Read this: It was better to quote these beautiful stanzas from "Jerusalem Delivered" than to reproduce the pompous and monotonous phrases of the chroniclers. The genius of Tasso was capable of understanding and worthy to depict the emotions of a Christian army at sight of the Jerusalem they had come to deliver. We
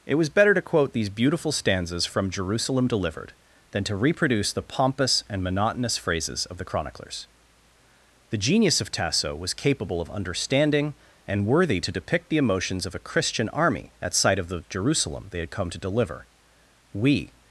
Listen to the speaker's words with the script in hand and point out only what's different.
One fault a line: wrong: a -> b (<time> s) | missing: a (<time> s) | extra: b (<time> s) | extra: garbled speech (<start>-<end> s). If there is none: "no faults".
no faults